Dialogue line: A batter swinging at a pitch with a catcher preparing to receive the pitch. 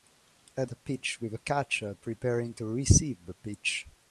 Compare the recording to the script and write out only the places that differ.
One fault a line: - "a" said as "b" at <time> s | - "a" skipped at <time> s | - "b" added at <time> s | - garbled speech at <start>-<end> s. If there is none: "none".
- "batter swinging at" skipped at 0.7 s